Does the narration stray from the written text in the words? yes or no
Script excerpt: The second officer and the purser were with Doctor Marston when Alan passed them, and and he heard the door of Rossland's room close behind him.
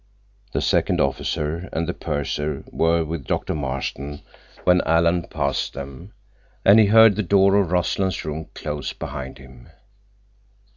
yes